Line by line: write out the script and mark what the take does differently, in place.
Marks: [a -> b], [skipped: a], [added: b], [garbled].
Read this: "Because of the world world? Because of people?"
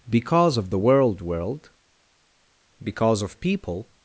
"Because of the world world? Because of people?"